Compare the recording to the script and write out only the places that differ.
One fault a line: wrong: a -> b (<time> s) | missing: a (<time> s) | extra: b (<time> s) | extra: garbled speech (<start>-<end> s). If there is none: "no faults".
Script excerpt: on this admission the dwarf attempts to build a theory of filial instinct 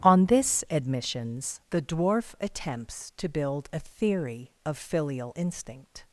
wrong: admission -> admissions (0.7 s)